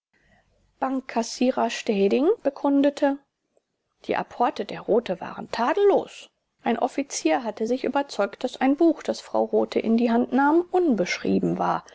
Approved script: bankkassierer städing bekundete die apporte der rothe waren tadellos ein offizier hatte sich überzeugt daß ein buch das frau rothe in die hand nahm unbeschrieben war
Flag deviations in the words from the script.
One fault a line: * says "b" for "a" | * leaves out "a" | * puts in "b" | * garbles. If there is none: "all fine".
all fine